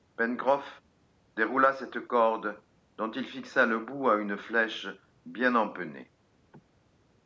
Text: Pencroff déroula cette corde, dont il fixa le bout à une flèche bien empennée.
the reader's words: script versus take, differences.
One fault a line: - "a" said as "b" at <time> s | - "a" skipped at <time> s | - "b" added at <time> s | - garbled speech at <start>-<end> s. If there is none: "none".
none